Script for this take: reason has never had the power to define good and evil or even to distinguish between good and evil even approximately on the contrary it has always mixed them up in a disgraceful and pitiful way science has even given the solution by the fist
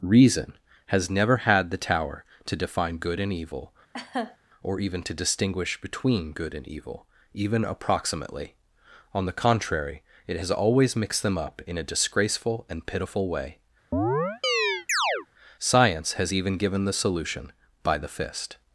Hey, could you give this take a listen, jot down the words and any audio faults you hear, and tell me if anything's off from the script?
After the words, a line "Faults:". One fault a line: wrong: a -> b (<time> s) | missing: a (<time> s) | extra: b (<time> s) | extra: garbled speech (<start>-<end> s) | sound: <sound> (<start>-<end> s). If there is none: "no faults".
reason has never had the tower to define good and evil or even to distinguish between good and evil even approximately on the contrary it has always mixed them up in a disgraceful and pitiful way science has even given the solution by the fist
Faults:
wrong: power -> tower (1.8 s)
sound: laugh (3.9-4.4 s)
sound: chirp (13.9-15.3 s)